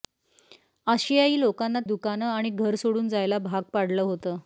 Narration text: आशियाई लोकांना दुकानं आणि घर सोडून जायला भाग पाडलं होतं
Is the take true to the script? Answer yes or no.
yes